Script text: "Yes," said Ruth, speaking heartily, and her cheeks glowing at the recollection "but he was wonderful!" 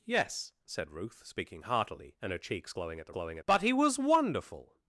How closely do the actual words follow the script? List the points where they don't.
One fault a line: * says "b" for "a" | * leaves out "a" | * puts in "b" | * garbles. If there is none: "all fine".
* says "glowing" for "recollection"